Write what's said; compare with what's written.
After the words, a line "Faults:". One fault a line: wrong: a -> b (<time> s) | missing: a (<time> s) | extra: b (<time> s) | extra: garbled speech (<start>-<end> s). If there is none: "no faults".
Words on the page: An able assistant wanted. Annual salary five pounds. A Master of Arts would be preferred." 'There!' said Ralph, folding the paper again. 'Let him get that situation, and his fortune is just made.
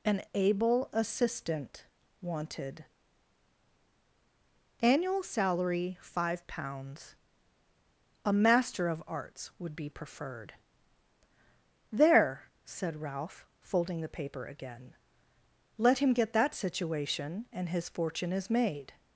An able assistant wanted. Annual salary five pounds. A Master of Arts would be preferred." 'There!' said Ralph, folding the paper again. 'Let him get that situation, and his fortune is made.
Faults:
missing: just (18.5 s)